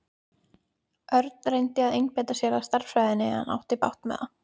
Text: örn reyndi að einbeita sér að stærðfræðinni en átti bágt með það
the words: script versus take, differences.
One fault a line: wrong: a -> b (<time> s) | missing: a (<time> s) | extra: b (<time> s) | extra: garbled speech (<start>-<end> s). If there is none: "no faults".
no faults